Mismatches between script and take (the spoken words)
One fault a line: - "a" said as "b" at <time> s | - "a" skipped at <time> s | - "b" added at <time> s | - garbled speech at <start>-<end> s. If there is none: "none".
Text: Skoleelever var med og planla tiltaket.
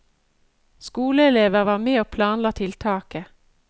none